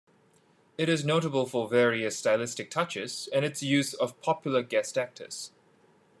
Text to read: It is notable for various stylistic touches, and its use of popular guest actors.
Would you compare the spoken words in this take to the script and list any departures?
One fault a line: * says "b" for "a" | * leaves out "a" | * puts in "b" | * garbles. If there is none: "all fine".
all fine